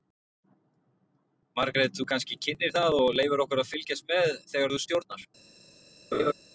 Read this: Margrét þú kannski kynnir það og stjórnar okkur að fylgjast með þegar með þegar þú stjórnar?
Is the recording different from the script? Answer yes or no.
yes